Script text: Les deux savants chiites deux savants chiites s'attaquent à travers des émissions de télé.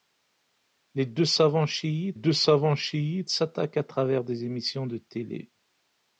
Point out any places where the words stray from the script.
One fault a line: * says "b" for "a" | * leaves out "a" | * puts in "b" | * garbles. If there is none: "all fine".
all fine